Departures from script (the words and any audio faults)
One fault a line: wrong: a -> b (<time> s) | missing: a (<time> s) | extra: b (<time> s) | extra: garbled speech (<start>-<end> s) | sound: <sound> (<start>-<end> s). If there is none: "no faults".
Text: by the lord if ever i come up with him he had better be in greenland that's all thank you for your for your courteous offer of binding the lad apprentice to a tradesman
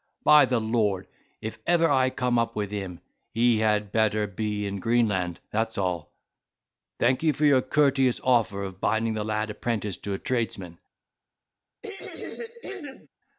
missing: for your (7.6 s)
sound: throat clearing (11.8-13.1 s)